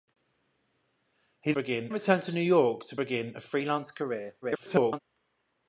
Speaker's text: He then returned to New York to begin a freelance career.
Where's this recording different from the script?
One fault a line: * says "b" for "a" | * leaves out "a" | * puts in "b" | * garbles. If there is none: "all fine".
* says "begin" for "then"
* garbles